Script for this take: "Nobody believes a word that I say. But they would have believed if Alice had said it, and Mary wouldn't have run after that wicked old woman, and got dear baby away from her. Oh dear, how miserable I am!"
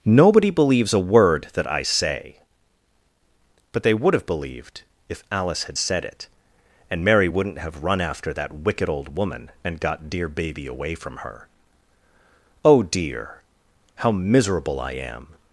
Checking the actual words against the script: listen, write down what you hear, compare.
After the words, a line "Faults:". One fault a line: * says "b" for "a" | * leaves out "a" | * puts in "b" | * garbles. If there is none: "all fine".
"Nobody believes a word that I say. But they would have believed if Alice had said it, and Mary wouldn't have run after that wicked old woman, and got dear baby away from her. Oh dear, how miserable I am!"
Faults:
all fine